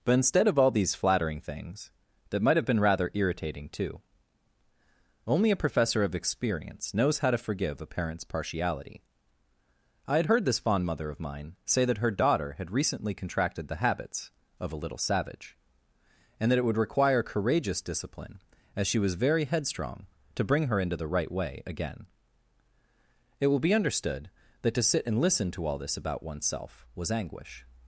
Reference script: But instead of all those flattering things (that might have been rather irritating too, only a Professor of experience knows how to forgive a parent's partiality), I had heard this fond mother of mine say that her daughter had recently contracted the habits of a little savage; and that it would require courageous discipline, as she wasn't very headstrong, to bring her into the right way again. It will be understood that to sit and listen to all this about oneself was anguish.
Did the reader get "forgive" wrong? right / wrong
right